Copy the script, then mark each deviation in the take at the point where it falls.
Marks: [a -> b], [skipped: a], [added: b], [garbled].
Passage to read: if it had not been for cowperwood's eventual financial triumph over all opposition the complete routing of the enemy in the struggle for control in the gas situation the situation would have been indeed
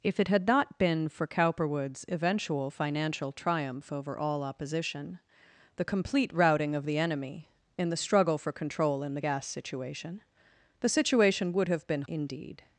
if it had not been for cowperwood's eventual financial triumph over all opposition the complete routing of the enemy in the struggle for control in the gas situation the situation would have been indeed